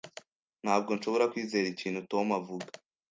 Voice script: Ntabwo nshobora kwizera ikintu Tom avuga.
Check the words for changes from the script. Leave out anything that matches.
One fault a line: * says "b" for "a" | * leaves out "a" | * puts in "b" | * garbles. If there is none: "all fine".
all fine